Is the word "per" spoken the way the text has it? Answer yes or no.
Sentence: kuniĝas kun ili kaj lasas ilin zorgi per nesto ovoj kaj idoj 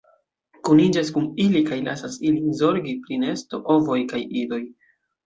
no